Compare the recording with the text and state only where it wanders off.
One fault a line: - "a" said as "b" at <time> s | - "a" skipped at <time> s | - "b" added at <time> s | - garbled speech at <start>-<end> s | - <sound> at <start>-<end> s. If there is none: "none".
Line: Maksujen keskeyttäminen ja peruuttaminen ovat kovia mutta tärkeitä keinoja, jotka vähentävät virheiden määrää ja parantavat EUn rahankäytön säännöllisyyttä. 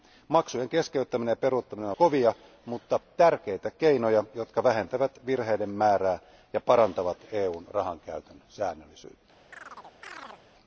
- "ovat" skipped at 1.9 s
- chirp at 9.5-10.4 s